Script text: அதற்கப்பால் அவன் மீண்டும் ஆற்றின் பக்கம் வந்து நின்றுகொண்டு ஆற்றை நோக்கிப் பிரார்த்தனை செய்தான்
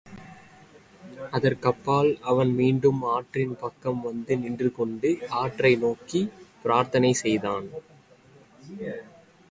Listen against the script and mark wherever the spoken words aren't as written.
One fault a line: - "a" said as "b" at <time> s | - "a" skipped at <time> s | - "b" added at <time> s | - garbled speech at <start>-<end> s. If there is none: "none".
none